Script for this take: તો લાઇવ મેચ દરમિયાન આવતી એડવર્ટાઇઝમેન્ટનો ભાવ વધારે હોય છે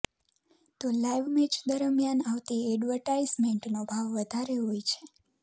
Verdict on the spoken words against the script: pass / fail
pass